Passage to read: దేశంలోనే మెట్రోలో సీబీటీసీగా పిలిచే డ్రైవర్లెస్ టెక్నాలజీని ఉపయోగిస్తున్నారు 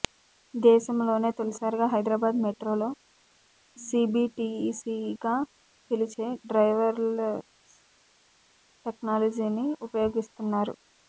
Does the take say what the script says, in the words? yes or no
no